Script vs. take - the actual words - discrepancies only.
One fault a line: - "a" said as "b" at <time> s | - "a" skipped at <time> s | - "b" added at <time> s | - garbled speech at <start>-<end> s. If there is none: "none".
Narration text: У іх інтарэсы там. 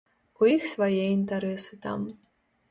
- "свае" added at 0.7 s